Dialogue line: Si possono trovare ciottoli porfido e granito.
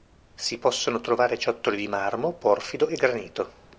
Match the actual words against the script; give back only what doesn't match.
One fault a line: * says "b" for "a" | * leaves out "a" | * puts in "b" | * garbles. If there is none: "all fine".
* puts in "di marmo"